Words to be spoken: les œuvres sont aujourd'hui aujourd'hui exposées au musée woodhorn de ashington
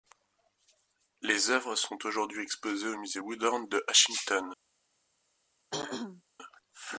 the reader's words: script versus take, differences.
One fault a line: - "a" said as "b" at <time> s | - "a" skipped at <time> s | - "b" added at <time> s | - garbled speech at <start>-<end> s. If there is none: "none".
- "aujourd'hui" skipped at 2.4 s